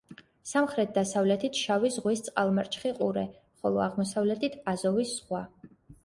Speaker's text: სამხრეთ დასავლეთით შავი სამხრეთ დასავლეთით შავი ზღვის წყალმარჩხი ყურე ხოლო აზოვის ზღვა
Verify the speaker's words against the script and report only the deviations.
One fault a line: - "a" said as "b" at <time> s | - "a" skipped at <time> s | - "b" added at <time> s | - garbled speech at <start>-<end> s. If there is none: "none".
- "სამხრეთ დასავლეთით შავი" skipped at 1.9 s
- "აღმოსავლეთით" added at 3.9 s